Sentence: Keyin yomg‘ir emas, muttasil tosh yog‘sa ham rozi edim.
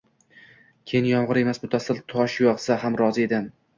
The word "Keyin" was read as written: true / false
true